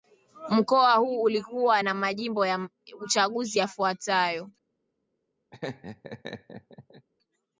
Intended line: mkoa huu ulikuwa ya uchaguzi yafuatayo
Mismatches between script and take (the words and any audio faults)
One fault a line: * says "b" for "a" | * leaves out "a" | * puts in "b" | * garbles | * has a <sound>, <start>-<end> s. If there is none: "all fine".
* puts in "na majimbo"
* has a laugh, 5.5-7.1 s